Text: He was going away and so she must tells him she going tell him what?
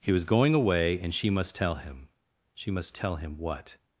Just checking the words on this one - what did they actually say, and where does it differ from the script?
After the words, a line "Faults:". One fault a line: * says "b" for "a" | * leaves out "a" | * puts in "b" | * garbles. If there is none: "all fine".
He was going away and she must tell him she must tell him what?
Faults:
* leaves out "so"
* says "tell" for "tells"
* says "must" for "going"